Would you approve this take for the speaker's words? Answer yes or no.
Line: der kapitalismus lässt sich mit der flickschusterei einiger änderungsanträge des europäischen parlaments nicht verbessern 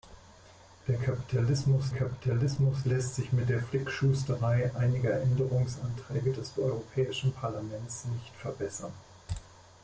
no